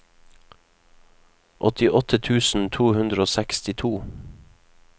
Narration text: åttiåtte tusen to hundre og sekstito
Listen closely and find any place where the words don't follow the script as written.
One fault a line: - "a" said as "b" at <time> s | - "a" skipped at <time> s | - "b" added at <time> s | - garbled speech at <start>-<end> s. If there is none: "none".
none